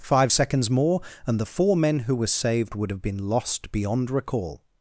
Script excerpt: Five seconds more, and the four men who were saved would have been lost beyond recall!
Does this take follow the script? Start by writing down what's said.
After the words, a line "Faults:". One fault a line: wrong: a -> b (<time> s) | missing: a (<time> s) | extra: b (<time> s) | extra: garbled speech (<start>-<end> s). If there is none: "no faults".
Five seconds more, and the four men who were saved would have been lost beyond recall!
Faults:
no faults